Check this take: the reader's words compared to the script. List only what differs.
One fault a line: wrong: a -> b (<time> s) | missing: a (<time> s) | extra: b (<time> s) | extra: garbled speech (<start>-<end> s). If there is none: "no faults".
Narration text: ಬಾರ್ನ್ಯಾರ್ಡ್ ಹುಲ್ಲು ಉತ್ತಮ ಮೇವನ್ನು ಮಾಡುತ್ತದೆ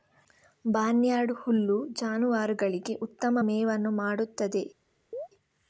extra: ಜಾನುವಾರುಗಳಿಗೆ (1.9 s)